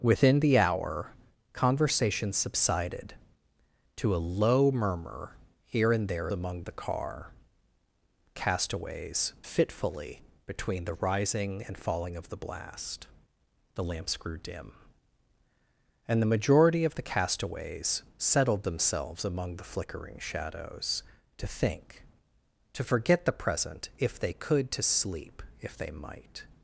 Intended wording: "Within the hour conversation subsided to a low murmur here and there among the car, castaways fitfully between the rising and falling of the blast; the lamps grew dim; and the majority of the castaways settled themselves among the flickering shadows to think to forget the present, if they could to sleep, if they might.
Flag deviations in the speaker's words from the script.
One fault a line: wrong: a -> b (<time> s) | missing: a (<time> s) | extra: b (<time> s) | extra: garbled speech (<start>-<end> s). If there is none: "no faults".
no faults